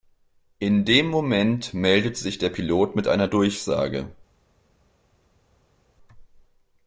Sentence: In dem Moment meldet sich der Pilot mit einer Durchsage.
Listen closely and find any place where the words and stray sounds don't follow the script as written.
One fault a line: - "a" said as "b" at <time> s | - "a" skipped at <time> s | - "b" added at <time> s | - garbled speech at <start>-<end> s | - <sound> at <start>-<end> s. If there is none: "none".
none